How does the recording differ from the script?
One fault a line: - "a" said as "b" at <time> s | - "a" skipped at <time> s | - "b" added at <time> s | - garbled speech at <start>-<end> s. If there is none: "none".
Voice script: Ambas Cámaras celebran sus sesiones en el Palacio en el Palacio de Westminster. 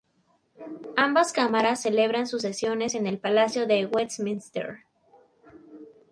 - "en el Palacio" skipped at 3.7 s